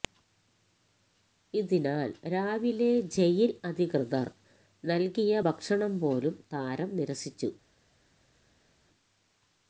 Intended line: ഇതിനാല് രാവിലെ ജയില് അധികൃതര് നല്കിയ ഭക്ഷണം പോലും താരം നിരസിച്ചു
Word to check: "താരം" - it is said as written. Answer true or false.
true